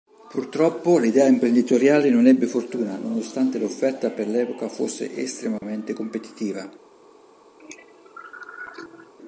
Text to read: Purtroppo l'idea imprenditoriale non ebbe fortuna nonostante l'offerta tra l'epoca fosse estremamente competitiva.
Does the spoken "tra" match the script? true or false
false